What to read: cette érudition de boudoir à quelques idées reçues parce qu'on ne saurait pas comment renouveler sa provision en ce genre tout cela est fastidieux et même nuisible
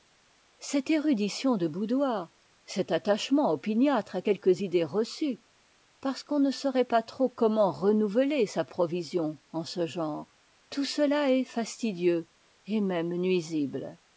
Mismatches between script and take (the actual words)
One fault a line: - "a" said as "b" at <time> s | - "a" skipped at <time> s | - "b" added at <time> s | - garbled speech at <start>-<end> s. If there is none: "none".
- "cet attachement opiniâtre" added at 2.6 s
- "trop" added at 7.0 s